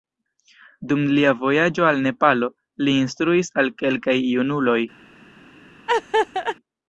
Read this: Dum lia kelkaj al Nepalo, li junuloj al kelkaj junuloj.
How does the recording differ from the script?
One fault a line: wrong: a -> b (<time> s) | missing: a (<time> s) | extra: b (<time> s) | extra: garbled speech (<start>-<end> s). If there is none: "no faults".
wrong: kelkaj -> vojaĝo (1.4 s)
wrong: junuloj -> instruis (3.0 s)